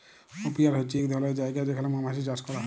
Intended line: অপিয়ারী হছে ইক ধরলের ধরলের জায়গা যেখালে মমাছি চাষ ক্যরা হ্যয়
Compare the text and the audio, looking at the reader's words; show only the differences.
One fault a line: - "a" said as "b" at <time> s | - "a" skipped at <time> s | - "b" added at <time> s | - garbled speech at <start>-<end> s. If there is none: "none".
- "ধরলের" skipped at 1.4 s